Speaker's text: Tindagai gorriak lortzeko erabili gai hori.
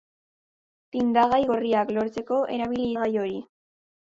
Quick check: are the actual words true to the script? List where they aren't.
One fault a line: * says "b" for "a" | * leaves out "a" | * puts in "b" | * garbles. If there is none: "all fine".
all fine